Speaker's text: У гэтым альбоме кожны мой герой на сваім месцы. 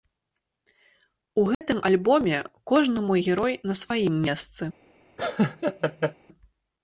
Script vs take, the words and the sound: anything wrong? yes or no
yes